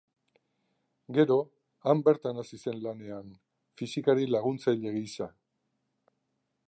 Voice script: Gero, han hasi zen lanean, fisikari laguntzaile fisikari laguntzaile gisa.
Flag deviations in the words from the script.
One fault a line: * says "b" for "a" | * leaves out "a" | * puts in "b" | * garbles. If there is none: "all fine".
* puts in "bertan"
* leaves out "fisikari laguntzaile"